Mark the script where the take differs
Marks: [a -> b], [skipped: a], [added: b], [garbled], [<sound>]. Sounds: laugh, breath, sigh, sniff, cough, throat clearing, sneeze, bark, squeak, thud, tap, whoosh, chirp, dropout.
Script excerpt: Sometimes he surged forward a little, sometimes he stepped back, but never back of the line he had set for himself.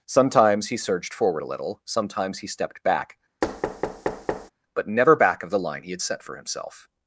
Sometimes he surged forward a little, sometimes he stepped back, [thud] but never back of the line he had set for himself.